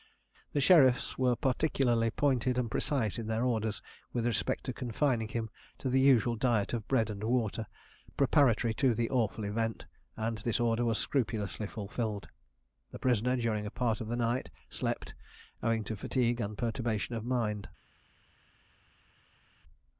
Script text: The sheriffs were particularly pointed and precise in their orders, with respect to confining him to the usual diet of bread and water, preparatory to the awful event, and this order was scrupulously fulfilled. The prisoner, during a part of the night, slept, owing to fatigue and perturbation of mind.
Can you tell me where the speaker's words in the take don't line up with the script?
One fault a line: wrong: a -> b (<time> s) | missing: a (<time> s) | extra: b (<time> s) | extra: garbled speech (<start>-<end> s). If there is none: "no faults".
no faults